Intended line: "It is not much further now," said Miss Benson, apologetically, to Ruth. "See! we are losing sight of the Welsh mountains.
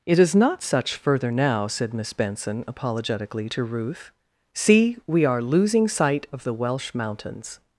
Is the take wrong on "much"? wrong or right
wrong